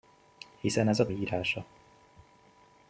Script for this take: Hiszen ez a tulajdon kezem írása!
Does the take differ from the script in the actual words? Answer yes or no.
yes